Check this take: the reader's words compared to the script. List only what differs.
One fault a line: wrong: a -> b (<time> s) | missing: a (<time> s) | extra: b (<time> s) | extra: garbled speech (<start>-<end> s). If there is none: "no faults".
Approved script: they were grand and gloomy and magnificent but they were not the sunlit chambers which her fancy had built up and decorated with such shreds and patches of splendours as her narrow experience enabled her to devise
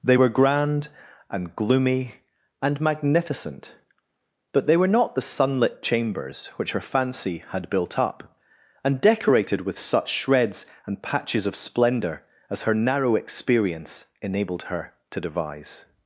wrong: splendours -> splendour (11.5 s)